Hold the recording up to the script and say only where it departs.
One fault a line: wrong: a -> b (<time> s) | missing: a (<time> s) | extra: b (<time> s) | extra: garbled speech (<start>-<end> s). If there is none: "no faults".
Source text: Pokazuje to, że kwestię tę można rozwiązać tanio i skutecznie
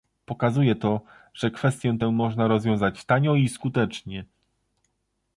no faults